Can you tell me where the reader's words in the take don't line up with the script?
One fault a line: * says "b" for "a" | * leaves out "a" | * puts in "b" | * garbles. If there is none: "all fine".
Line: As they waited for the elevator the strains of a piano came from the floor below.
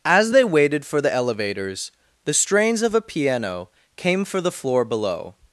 * says "elevators" for "elevator"
* says "for" for "from"